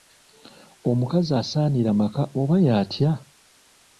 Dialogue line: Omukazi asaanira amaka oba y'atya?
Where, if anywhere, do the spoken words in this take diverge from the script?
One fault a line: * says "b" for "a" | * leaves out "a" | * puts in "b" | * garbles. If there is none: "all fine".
all fine